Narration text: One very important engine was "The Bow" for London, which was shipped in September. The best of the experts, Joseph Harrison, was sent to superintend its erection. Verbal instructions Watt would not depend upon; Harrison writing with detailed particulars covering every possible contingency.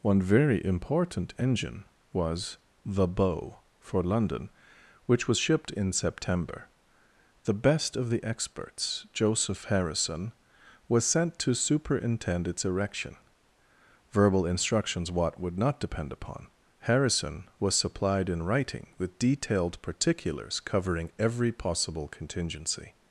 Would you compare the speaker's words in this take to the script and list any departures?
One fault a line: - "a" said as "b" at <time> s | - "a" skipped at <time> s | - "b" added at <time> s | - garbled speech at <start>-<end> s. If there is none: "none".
- "was supplied in" added at 17.6 s